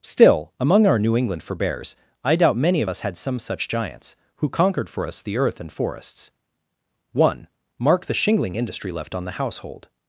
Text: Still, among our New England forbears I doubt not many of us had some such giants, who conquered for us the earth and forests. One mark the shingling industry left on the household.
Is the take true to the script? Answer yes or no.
no